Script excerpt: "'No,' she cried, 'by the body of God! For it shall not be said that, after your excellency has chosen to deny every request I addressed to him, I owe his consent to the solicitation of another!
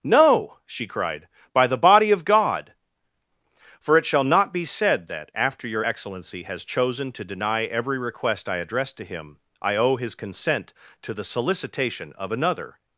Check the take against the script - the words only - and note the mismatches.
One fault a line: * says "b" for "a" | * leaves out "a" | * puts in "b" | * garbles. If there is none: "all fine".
all fine